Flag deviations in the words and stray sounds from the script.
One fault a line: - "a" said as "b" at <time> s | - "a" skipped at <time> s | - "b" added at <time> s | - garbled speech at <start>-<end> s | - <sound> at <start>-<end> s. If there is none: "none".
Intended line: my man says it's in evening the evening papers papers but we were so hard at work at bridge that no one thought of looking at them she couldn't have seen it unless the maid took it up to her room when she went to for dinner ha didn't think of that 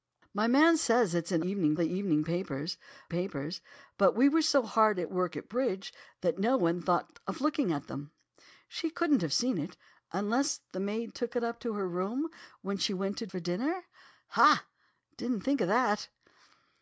none